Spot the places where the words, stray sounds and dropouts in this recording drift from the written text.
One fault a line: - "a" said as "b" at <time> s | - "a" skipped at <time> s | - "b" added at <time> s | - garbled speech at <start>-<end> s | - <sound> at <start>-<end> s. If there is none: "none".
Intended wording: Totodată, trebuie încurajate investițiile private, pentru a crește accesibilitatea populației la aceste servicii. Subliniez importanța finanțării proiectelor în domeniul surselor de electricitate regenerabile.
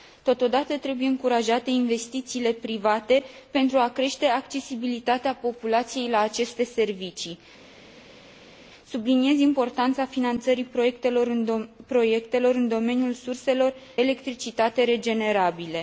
- "de" skipped at 13.7 s